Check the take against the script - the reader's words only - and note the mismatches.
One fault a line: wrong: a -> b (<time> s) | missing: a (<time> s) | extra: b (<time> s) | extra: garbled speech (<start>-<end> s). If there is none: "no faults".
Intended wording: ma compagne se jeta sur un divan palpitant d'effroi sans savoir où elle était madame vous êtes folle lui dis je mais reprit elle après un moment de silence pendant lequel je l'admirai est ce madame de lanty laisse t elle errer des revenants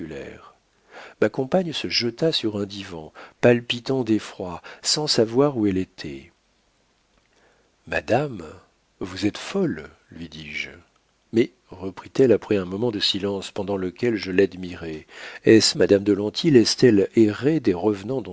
no faults